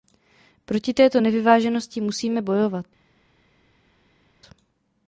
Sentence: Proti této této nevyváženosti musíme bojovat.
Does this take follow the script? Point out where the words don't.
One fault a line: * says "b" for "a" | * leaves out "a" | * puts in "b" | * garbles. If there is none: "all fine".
* leaves out "této"